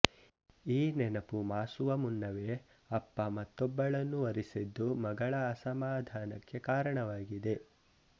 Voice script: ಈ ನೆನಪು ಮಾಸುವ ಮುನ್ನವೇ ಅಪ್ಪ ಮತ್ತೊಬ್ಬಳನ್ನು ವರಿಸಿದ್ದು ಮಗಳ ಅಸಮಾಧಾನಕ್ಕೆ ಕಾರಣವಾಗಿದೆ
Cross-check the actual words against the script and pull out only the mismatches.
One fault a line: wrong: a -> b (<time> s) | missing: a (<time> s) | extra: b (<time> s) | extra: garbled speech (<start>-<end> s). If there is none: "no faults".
no faults